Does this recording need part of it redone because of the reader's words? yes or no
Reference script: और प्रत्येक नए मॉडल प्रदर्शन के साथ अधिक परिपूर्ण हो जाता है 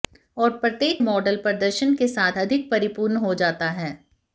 yes